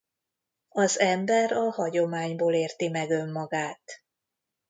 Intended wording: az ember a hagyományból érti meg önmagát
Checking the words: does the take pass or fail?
pass